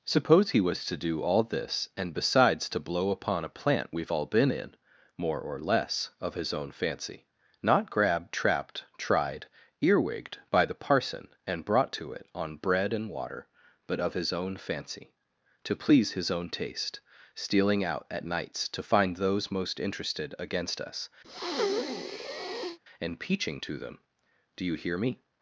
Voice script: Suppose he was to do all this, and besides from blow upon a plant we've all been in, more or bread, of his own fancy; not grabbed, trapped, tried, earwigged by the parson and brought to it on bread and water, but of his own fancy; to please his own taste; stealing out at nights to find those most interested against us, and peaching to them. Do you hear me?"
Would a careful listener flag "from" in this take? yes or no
yes